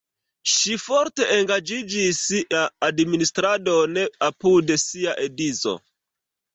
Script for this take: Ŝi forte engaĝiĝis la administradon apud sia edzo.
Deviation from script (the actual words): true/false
false